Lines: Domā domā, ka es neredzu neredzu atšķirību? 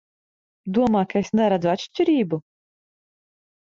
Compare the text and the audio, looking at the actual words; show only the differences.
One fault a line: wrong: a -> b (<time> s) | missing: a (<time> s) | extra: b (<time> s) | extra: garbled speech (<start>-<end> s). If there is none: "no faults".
missing: domā (1.0 s)
missing: neredzu (1.7 s)